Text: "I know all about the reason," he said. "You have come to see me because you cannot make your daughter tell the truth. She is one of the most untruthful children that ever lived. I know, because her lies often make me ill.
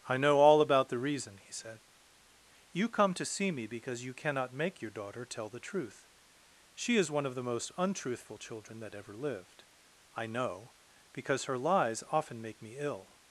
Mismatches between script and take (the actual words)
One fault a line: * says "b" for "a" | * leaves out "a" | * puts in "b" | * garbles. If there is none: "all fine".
* leaves out "have"